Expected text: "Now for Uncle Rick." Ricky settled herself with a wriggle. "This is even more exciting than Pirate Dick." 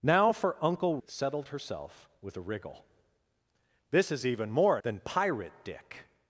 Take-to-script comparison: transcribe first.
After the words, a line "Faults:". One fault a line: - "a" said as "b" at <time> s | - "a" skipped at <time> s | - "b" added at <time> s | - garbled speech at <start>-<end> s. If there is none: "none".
"Now for Uncle Settled herself with a wriggle. "This is even more than Pirate Dick."
Faults:
- "Rick Ricky" skipped at 1.0 s
- "exciting" skipped at 4.8 s